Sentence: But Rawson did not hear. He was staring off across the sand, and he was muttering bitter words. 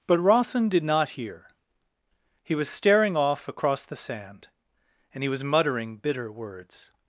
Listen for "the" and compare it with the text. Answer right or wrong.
right